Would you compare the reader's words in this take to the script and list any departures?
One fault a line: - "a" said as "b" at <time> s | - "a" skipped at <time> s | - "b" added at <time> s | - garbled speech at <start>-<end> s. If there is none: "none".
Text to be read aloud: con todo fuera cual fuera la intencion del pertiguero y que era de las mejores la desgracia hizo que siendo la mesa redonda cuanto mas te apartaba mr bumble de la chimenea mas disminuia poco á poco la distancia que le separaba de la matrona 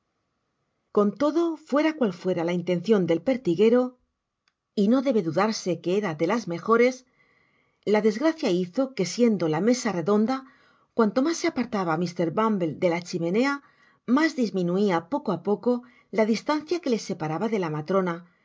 - "no debe dudarse" added at 4.9 s
- "te" said as "se" at 11.4 s